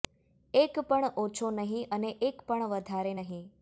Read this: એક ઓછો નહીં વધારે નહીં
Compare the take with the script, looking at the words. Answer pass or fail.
fail